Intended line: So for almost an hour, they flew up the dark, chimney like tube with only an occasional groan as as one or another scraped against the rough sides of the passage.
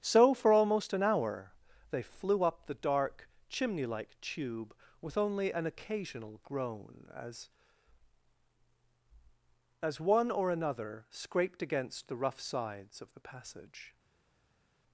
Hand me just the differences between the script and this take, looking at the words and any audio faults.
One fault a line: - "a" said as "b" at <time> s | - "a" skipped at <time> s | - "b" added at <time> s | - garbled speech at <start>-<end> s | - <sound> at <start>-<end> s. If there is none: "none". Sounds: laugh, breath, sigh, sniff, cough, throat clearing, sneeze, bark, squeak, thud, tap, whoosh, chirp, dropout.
none